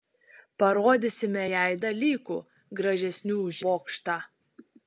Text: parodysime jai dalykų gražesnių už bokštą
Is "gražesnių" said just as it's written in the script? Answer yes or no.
yes